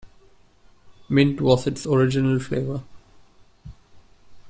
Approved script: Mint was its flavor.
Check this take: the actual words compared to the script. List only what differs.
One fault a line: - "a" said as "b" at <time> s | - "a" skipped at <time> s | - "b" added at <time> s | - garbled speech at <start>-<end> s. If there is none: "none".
- "original" added at 1.8 s